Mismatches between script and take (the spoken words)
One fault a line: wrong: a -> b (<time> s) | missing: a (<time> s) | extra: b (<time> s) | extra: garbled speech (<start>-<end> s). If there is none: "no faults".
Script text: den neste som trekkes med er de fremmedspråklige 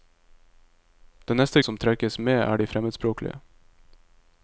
no faults